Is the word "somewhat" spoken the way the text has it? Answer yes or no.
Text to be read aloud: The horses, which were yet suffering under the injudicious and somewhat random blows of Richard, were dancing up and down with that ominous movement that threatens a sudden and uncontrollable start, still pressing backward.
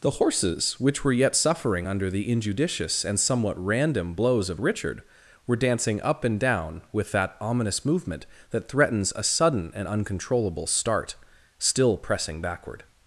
yes